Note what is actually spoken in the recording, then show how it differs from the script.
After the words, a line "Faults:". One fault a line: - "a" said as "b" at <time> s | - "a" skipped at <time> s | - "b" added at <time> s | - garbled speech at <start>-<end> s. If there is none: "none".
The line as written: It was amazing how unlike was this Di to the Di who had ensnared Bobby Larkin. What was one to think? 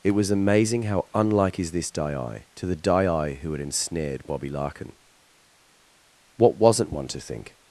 It was amazing how unlike is this Di to the Di who had ensnared Bobby Larkin. What wasn't one to think?
Faults:
- "was" said as "is" at 1.6 s
- "was" said as "wasn't" at 6.5 s